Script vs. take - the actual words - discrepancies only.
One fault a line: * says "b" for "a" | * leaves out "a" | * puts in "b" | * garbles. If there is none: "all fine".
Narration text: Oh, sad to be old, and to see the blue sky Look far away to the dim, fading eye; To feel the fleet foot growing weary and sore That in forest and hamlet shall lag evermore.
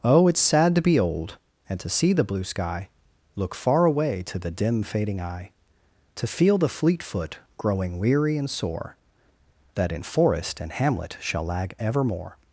* puts in "it's"